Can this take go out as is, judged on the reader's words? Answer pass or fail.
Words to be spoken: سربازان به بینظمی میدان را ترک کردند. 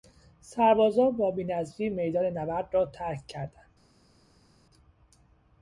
fail